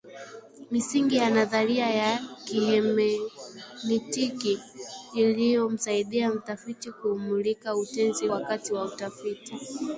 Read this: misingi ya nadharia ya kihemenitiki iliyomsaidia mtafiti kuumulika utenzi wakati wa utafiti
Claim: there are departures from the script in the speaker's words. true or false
false